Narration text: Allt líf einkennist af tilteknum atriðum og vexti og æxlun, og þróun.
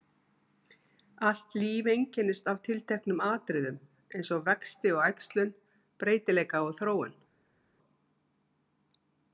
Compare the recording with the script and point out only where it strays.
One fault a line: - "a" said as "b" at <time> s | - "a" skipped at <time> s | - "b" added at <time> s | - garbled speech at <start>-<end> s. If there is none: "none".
- "eins" added at 4.2 s
- "breytileika" added at 6.0 s